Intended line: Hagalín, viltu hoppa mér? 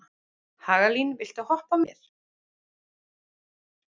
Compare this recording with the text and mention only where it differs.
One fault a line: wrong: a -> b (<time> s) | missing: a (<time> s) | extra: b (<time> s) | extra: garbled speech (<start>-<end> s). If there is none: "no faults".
no faults